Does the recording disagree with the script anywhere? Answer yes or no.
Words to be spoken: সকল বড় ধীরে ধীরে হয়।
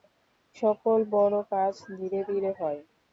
yes